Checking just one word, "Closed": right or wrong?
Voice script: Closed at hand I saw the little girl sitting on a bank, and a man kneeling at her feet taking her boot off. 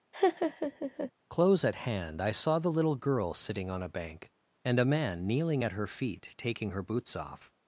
wrong